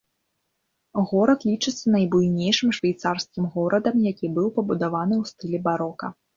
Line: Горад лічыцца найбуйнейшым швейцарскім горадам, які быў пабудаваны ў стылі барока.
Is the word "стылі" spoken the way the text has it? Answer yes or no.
yes